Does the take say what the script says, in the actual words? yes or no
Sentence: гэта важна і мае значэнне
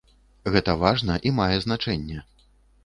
yes